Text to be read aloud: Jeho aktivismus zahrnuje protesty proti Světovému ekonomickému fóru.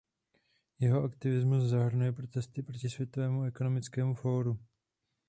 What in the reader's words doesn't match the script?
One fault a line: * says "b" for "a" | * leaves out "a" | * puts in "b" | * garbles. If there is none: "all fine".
all fine